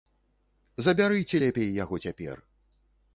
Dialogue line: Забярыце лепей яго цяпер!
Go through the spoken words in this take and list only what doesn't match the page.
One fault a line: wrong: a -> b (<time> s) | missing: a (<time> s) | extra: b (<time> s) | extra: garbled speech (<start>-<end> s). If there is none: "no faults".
no faults